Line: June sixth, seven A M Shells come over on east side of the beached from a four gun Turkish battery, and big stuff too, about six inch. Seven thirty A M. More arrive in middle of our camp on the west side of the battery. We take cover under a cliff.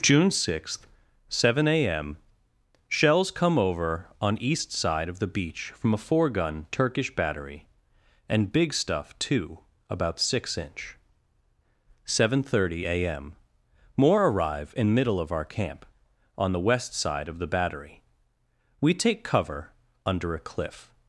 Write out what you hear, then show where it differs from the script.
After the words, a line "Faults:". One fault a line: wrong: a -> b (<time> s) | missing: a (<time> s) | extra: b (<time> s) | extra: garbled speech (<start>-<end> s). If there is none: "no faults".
June sixth, seven A M Shells come over on east side of the beach from a four gun Turkish battery, and big stuff too, about six inch. Seven thirty A M. More arrive in middle of our camp on the west side of the battery. We take cover under a cliff.
Faults:
wrong: beached -> beach (5.3 s)